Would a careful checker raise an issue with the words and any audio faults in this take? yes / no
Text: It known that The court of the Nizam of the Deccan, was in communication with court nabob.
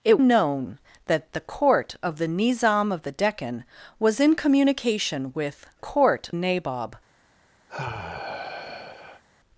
yes